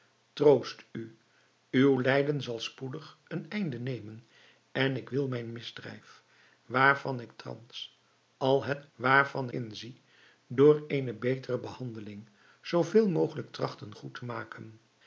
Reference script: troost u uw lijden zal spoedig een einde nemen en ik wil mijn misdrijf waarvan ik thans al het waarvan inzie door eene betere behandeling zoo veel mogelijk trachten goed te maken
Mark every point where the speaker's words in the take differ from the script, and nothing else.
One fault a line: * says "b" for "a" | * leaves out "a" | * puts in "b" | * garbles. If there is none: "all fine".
all fine